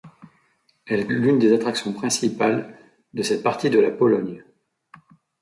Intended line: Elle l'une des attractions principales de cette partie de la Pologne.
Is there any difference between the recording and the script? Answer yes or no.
no